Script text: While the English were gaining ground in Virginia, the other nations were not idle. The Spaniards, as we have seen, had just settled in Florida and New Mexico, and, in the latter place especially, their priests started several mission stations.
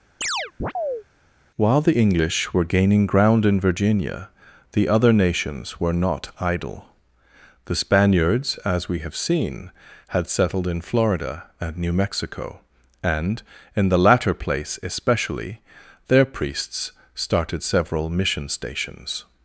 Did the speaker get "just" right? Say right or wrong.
wrong